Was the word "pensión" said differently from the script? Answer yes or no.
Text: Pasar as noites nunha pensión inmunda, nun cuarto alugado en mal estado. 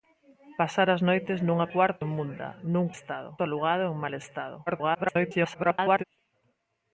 yes